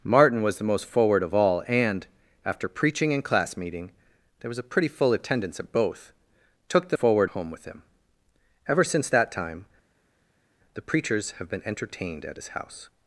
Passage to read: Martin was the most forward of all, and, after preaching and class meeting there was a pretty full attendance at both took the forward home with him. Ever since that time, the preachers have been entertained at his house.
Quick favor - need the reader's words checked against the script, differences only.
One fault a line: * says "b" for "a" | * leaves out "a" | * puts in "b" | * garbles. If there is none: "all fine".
all fine